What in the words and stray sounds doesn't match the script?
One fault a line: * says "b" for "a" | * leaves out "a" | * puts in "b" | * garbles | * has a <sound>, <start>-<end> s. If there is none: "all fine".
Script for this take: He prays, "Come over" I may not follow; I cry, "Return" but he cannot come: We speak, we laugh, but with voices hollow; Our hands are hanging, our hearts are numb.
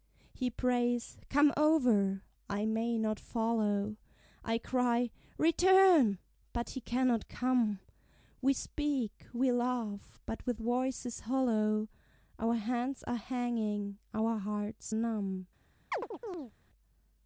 * leaves out "are"
* has a chirp, 15.9-16.5 s